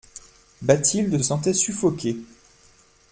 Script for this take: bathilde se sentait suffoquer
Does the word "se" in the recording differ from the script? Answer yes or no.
yes